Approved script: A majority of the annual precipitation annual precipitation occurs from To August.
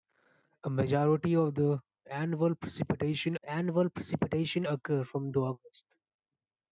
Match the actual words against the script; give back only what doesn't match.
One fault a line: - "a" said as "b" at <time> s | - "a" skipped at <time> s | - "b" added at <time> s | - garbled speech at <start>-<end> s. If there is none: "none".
none